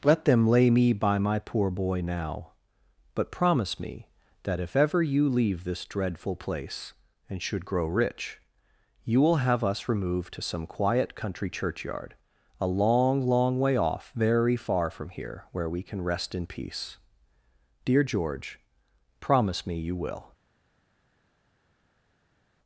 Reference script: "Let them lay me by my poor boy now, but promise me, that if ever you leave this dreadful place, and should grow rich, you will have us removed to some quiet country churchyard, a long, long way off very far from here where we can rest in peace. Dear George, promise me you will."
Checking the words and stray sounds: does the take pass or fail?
pass